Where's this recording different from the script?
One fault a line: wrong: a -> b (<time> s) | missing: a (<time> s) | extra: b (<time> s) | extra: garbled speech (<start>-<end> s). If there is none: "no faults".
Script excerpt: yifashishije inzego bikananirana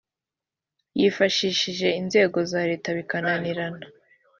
extra: za leta (2.5 s)